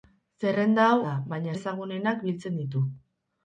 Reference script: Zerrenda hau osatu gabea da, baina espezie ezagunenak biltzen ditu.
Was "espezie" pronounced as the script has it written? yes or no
no